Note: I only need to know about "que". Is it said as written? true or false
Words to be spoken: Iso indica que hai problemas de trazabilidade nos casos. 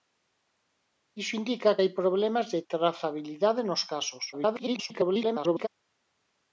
false